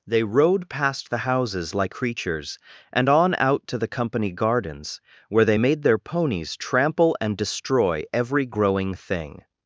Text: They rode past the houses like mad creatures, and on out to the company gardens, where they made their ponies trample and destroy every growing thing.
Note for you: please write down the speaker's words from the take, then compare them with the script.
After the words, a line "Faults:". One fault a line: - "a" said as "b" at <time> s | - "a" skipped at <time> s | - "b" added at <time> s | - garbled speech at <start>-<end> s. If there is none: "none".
They rode past the houses like creatures, and on out to the company gardens, where they made their ponies trample and destroy every growing thing.
Faults:
- "mad" skipped at 1.9 s